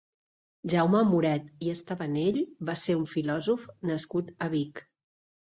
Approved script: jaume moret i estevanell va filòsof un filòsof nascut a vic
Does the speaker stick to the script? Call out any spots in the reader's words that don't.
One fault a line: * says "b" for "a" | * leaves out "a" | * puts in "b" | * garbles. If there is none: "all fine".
* says "ser" for "filòsof"